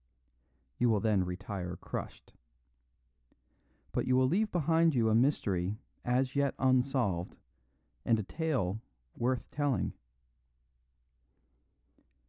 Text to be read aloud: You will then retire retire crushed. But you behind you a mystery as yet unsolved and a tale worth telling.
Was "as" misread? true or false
false